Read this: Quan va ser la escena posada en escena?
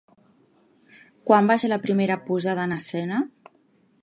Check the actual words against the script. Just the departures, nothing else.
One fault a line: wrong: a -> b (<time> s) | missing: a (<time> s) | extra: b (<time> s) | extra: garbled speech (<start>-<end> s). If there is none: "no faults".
wrong: escena -> primera (1.9 s)